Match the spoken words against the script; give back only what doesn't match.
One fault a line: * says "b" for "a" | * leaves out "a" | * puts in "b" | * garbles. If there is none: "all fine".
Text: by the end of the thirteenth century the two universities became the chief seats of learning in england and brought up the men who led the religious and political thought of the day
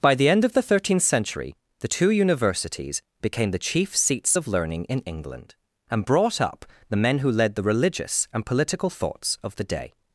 * says "thoughts" for "thought"